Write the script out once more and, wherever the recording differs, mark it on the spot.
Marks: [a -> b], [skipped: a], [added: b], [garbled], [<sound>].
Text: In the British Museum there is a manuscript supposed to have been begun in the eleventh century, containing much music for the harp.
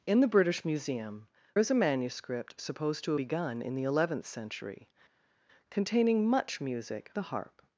In the British Museum [skipped: there] is a manuscript supposed to [skipped: have been] begun in the eleventh century, containing much music [skipped: for] the harp.